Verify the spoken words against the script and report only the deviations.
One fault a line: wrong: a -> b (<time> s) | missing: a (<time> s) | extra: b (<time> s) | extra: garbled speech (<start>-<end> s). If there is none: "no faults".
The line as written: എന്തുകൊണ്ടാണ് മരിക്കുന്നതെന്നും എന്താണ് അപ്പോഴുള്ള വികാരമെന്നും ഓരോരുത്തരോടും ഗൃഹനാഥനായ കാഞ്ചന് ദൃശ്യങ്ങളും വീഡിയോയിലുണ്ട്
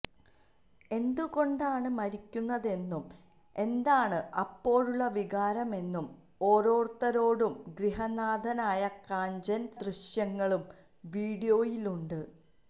no faults